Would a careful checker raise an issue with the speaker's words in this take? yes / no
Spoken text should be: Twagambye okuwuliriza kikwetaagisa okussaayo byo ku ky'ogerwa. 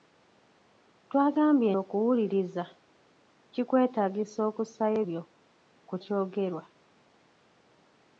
no